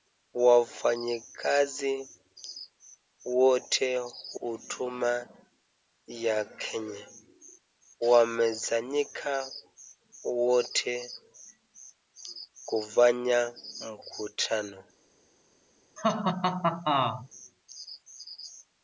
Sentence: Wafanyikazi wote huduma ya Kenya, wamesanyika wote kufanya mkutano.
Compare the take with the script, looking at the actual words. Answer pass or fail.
pass